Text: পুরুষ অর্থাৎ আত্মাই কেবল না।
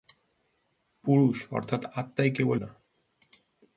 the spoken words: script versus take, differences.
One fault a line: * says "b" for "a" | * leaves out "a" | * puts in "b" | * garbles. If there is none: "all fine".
all fine